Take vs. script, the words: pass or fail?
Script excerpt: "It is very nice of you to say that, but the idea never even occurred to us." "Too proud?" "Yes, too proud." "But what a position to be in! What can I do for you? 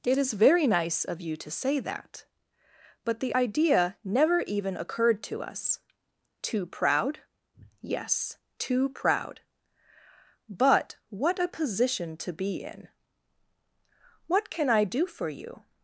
pass